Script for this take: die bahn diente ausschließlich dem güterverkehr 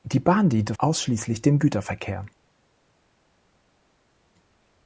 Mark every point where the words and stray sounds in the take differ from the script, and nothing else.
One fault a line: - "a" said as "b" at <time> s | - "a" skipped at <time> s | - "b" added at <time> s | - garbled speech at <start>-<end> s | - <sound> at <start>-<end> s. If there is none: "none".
none